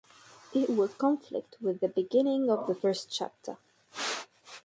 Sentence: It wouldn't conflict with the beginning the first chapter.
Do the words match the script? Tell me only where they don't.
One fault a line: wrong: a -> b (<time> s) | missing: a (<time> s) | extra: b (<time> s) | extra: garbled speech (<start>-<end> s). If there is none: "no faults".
wrong: wouldn't -> would (0.7 s)
extra: of (2.5 s)